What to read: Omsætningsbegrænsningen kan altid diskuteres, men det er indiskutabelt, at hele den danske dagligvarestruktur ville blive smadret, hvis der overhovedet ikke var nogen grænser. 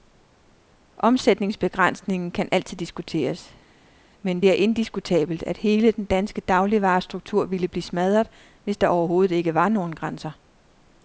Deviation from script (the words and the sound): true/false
false